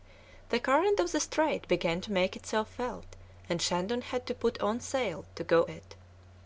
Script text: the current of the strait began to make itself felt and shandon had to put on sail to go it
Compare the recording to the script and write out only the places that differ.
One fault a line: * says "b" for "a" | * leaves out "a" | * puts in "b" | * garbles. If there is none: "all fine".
all fine